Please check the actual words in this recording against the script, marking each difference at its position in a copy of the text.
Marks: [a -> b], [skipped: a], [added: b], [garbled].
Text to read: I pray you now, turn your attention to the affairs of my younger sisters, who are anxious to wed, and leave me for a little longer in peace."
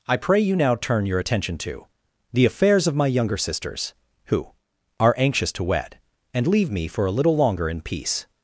I pray you now, turn your attention to the affairs of my younger sisters, who are anxious to wed, and leave me for a little longer in peace."